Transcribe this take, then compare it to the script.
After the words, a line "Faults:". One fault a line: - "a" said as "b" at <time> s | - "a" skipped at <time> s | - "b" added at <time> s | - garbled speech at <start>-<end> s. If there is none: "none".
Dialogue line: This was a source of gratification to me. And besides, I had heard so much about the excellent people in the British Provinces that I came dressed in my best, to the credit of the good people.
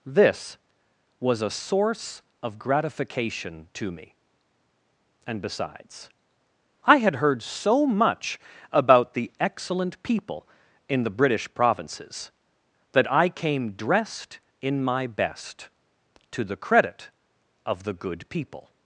This was a source of gratification to me. And besides, I had heard so much about the excellent people in the British Provinces that I came dressed in my best, to the credit of the good people.
Faults:
none